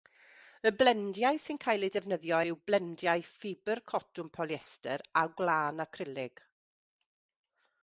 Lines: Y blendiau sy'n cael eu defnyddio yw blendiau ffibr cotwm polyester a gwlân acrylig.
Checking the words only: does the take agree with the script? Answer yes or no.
yes